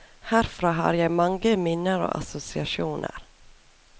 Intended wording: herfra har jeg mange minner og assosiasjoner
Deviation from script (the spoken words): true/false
false